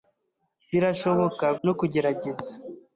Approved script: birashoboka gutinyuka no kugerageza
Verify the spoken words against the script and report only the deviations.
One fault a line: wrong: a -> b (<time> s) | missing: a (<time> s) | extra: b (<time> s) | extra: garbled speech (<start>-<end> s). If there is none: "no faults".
missing: gutinyuka (1.5 s)